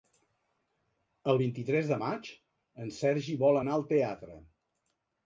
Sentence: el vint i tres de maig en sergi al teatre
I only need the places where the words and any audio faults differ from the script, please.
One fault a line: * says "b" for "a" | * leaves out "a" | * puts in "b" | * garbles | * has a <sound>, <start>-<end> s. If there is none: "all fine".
* puts in "vol anar"